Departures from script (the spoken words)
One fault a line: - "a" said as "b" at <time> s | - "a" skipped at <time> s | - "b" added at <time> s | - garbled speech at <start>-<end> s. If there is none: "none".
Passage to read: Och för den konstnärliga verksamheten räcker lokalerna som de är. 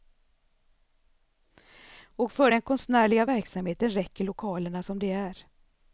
none